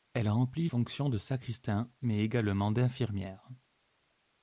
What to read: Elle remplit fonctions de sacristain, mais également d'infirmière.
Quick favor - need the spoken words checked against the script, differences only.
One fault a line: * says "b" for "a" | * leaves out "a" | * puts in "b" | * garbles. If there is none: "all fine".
all fine